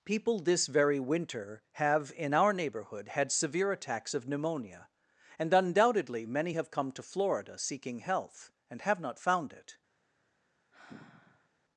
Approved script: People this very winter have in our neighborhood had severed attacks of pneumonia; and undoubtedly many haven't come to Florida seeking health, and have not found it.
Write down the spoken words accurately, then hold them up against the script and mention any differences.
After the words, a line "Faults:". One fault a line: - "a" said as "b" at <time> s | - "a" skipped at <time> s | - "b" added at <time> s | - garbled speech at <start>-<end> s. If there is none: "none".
People this very winter have in our neighborhood had severe attacks of pneumonia; and undoubtedly many have come to Florida seeking health, and have not found it.
Faults:
- "severed" said as "severe" at 3.3 s
- "haven't" said as "have" at 6.5 s